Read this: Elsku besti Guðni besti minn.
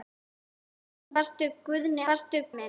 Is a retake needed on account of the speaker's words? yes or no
no